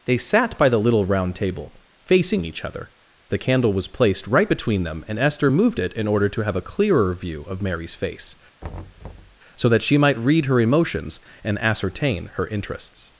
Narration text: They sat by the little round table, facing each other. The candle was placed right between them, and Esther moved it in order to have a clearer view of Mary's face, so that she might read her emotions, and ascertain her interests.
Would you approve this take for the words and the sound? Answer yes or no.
no